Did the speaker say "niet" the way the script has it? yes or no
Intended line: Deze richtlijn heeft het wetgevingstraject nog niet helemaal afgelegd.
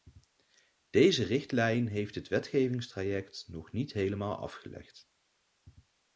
yes